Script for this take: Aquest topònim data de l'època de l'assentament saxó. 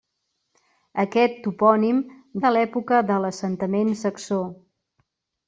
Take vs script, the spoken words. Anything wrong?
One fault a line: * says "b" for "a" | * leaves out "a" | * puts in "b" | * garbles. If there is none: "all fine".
* leaves out "data"